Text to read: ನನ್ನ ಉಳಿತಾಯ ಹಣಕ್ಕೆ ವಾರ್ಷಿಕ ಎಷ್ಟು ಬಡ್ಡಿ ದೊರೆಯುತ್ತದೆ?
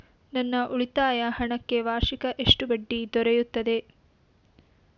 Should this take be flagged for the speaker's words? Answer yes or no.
no